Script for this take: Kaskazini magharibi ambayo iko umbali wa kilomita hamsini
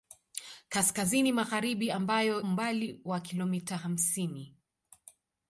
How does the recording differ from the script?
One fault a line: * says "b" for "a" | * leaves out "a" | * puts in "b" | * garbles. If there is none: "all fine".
* leaves out "iko"